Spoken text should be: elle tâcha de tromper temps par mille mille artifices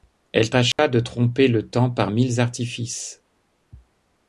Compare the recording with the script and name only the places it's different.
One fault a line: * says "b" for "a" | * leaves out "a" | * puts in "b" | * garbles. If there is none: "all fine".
* puts in "le"
* leaves out "mille"